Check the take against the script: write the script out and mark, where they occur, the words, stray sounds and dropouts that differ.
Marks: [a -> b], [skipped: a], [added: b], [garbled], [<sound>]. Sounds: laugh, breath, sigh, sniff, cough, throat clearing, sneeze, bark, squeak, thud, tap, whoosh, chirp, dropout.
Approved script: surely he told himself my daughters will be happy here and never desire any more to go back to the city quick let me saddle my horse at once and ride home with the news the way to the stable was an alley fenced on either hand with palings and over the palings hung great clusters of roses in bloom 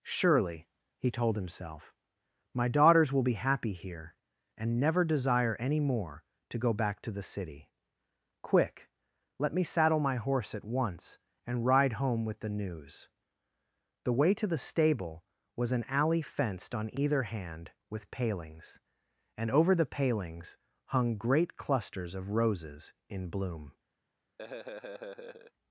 surely he told himself my daughters will be happy here and never desire any more to go back to the city quick let me saddle my horse at once and ride home with the news the way to the stable was an alley fenced on either hand with palings and over the palings hung great clusters of roses in bloom [laugh]